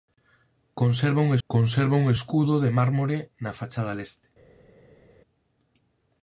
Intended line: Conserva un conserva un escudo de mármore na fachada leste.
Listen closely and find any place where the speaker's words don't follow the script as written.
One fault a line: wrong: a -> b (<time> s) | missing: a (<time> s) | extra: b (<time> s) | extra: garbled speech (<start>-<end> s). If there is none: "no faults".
no faults